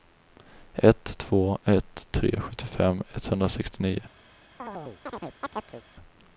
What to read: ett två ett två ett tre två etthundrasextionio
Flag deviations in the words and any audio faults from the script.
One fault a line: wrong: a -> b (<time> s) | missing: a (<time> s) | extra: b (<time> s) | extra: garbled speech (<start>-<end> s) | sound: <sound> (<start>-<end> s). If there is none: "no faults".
missing: två ett (2.1 s)
wrong: två -> sjuttiofem (2.4 s)
sound: chirp (4.6-5.8 s)